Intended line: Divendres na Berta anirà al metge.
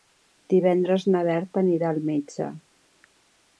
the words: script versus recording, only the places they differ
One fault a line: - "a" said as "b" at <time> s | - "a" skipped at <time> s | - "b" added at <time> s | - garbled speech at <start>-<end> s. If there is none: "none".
none